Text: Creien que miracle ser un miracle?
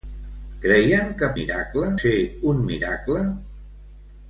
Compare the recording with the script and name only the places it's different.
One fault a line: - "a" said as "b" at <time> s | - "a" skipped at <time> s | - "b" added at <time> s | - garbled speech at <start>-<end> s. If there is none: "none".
none